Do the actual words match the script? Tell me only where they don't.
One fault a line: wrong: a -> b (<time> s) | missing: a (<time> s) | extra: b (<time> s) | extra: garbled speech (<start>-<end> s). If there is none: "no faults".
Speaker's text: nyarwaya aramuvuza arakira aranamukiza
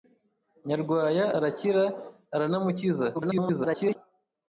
missing: aramuvuza (1.2 s)
extra: garbled speech (3.1-4.0 s)